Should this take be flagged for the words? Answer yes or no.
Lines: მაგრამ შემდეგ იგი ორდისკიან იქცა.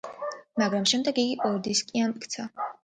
no